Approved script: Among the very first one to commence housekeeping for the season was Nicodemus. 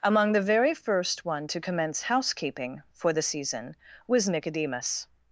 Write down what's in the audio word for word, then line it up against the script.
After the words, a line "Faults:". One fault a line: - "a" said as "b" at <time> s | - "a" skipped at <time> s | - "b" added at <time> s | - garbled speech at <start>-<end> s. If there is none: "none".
Among the very first one to commence housekeeping for the season was Nicodemus.
Faults:
none